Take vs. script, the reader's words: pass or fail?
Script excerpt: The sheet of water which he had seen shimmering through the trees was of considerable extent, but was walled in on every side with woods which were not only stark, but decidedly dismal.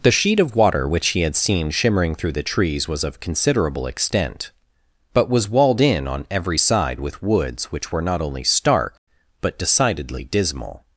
pass